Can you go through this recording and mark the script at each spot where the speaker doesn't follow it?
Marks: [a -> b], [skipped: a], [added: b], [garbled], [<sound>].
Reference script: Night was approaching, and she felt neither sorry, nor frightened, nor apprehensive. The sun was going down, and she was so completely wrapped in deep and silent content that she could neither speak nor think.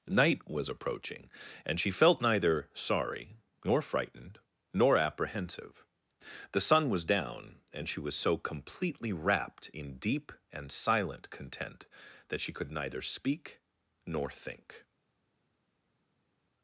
Night was approaching, and she felt neither sorry, nor frightened, nor apprehensive. The sun was [skipped: going] down, and she was so completely wrapped in deep and silent content that she could neither speak nor think.